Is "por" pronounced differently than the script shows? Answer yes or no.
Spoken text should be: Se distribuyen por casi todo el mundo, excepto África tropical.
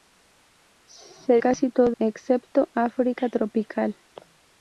yes